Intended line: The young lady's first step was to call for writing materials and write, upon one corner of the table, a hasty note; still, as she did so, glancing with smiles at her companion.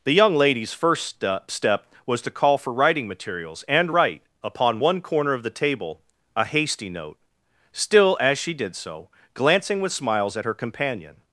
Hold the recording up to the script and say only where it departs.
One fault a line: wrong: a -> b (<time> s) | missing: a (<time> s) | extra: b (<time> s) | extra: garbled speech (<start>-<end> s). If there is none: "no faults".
extra: step (1.5 s)